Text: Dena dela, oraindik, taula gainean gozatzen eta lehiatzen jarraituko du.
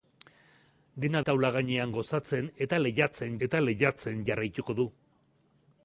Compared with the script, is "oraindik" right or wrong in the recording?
wrong